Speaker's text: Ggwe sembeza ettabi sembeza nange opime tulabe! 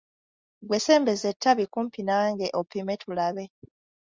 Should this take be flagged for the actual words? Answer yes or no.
yes